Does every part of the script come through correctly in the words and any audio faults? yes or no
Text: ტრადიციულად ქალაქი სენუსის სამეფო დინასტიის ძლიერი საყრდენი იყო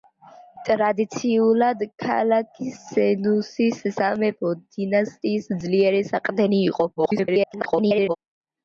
no